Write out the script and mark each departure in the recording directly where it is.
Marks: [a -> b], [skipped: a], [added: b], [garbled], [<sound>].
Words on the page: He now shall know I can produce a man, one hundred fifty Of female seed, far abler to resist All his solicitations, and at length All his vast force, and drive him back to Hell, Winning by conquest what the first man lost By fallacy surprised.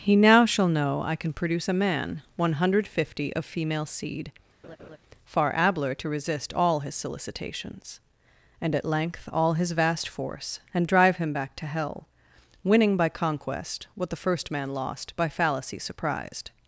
He now shall know I can produce a man, one hundred fifty Of female seed, [laugh] far abler to resist All his solicitations, and at length All his vast force, and drive him back to Hell, Winning by conquest what the first man lost By fallacy surprised.